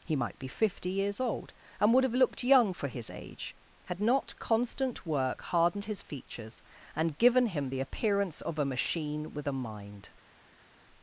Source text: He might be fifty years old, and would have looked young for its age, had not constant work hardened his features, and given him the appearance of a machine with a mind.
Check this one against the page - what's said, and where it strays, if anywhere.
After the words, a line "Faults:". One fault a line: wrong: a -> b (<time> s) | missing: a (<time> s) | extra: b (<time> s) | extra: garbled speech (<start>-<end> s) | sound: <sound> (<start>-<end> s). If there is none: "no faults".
He might be fifty years old, and would have looked young for his age, had not constant work hardened his features, and given him the appearance of a machine with a mind.
Faults:
wrong: its -> his (2.9 s)